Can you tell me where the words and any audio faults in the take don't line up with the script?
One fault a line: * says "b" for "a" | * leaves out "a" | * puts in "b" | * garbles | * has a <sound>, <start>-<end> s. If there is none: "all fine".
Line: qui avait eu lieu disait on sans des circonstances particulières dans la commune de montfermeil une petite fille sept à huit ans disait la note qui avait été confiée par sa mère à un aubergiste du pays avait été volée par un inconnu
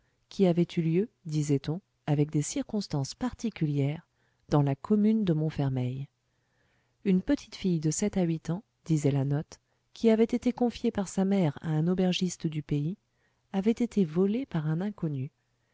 * says "avec" for "sans"
* puts in "de"